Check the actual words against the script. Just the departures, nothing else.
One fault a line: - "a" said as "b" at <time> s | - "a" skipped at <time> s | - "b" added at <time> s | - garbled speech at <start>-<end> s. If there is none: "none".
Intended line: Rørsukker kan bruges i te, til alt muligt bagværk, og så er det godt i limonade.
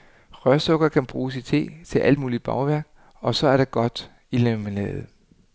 none